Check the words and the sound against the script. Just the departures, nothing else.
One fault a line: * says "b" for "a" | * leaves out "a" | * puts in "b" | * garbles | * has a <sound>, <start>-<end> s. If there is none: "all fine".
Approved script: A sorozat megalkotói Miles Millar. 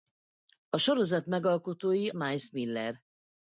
all fine